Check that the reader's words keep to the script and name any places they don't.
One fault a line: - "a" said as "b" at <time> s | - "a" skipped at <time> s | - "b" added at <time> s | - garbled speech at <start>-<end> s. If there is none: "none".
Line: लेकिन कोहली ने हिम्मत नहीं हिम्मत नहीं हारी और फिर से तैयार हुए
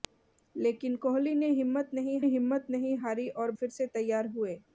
none